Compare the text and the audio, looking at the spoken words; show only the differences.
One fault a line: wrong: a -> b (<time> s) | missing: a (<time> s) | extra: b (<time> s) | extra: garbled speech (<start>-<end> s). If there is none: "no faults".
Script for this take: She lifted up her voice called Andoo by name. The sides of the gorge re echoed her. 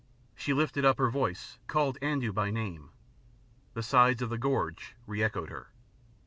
no faults